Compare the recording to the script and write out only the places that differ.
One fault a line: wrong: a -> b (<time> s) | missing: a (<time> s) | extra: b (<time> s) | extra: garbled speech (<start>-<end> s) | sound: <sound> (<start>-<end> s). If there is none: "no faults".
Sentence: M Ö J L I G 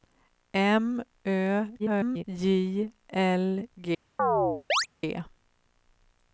extra: garbled speech (1.8-2.2 s)
missing: I (3.7 s)
sound: chirp (4.2-4.9 s)